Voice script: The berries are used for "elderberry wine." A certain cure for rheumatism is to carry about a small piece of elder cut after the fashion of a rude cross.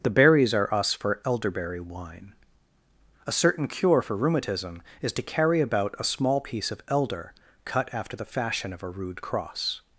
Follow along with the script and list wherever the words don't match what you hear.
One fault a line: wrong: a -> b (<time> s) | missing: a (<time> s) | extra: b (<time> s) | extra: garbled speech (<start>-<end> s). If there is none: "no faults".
wrong: used -> us (0.7 s)